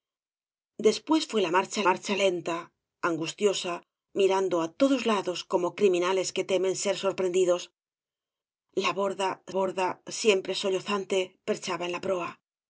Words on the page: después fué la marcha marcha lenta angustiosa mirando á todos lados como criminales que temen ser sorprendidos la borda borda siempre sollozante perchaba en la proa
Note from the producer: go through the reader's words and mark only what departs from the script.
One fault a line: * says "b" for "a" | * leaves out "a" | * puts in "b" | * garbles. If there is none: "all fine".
all fine